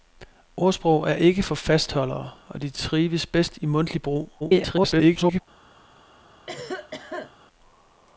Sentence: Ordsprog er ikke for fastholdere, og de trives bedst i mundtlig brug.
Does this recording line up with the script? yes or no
no